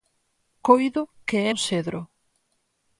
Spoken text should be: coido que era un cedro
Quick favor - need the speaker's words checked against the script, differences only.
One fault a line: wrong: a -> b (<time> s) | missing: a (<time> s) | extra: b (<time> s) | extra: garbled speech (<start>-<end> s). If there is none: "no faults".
missing: era (1.5 s)